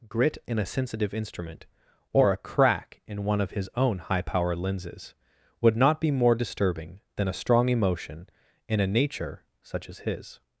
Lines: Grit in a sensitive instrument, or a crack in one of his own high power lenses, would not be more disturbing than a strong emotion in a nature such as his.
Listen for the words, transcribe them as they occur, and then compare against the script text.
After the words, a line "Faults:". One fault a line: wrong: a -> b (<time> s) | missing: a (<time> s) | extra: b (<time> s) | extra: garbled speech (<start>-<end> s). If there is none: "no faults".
Grit in a sensitive instrument, or a crack in one of his own high power lenses, would not be more disturbing than a strong emotion in a nature such as his.
Faults:
no faults